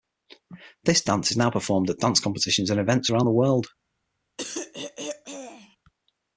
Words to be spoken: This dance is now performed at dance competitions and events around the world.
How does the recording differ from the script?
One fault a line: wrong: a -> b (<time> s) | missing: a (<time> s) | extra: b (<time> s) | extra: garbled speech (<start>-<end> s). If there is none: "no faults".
no faults